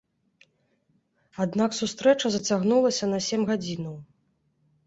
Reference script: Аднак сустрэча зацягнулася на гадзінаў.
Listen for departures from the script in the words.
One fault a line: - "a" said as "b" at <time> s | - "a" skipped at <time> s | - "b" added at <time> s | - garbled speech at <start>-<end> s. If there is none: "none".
- "сем" added at 3.3 s